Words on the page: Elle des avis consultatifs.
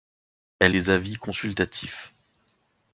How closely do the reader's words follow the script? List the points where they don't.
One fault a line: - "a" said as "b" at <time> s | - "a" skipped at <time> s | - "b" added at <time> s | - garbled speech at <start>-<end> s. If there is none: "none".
none